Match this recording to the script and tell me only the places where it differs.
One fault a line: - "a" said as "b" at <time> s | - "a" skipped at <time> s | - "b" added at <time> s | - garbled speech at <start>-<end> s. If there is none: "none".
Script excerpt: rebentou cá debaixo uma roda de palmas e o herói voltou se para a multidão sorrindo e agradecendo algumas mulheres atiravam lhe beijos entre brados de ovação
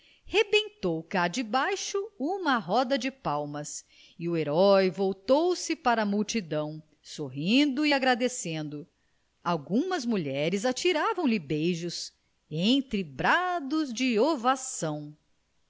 none